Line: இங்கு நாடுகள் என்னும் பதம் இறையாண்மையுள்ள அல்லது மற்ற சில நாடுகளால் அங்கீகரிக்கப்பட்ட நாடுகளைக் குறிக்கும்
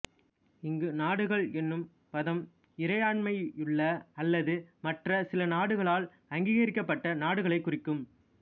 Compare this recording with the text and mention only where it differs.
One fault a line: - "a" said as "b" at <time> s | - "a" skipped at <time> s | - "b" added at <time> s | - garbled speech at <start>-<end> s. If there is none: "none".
none